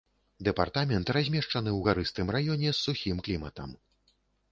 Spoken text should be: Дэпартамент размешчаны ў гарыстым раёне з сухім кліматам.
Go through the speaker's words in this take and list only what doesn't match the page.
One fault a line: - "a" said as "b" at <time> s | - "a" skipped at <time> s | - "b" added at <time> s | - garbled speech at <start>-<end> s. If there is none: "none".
none